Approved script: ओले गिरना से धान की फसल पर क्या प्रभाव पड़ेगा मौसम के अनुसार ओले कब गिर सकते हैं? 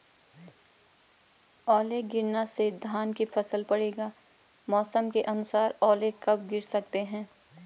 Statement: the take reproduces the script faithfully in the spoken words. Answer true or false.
false